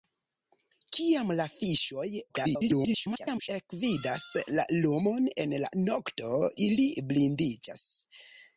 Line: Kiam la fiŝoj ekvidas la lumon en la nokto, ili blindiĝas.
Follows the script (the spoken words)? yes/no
no